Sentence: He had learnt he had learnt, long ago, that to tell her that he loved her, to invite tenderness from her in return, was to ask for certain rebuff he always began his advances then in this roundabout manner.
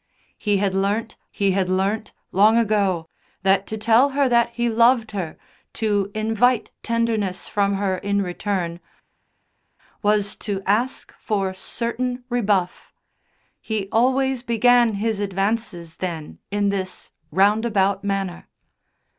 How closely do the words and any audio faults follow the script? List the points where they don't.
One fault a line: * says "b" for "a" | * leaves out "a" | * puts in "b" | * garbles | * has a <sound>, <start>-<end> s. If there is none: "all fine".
all fine